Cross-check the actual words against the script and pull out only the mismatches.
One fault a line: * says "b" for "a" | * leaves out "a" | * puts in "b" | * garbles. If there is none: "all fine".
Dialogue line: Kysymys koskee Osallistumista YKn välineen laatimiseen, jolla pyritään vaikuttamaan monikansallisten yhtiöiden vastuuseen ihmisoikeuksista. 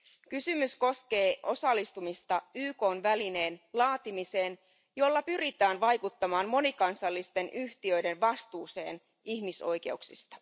all fine